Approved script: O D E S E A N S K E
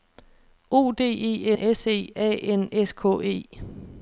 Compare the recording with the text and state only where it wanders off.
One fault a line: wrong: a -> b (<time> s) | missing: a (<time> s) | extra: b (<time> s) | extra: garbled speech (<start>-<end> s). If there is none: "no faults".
no faults